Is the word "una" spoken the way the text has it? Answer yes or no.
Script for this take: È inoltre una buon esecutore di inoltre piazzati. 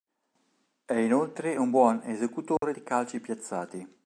no